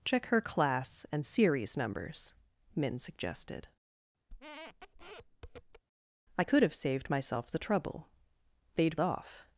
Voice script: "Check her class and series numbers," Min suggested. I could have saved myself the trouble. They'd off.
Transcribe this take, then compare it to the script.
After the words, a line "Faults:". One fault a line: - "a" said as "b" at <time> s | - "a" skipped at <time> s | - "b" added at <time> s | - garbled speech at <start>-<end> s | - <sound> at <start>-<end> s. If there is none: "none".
"Check her class and series numbers," Min suggested. I could have saved myself the trouble. They'd off.
Faults:
- squeak at 4.3-5.8 s